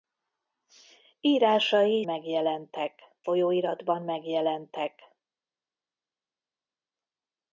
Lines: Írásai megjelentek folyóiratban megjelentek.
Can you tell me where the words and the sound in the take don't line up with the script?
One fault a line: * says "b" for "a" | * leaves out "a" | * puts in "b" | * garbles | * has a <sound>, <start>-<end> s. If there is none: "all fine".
all fine